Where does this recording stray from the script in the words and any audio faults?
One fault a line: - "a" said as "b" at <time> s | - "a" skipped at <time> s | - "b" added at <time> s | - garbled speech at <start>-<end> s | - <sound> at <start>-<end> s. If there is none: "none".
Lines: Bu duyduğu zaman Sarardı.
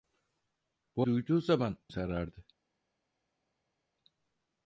none